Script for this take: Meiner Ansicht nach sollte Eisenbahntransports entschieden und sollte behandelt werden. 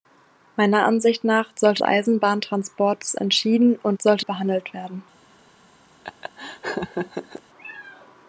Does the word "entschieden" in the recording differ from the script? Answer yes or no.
no